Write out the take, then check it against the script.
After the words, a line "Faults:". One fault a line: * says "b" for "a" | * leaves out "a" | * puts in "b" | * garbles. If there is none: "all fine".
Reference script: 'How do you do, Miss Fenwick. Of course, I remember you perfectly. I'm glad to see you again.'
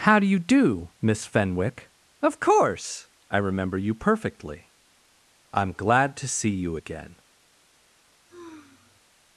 'How do you do, Miss Fenwick. Of course, I remember you perfectly. I'm glad to see you again.'
Faults:
all fine